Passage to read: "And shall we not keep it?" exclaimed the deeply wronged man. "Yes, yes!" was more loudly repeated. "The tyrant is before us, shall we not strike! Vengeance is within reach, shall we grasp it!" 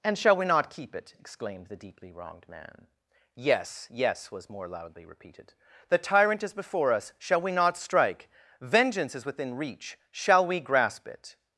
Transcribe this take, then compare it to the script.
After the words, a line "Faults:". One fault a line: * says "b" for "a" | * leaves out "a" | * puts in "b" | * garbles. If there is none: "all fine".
"And shall we not keep it?" exclaimed the deeply wronged man. "Yes, yes!" was more loudly repeated. "The tyrant is before us, shall we not strike! Vengeance is within reach, shall we grasp it!"
Faults:
all fine